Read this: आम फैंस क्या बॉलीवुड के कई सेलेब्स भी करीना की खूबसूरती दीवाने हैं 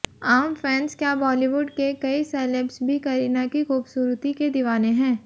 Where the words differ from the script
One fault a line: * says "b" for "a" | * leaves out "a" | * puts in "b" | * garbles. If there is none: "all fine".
* puts in "के"